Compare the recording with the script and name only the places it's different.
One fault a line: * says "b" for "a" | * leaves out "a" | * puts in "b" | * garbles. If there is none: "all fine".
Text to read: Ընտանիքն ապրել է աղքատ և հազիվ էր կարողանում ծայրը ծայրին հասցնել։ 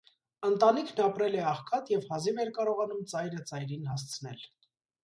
all fine